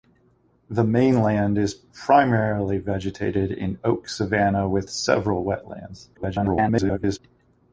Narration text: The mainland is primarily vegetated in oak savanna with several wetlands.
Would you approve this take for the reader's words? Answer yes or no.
no